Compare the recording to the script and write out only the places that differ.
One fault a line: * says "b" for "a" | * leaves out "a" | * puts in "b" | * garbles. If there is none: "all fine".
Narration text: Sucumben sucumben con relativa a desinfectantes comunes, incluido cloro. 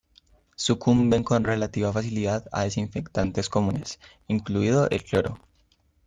* leaves out "sucumben"
* puts in "facilidad"
* puts in "el"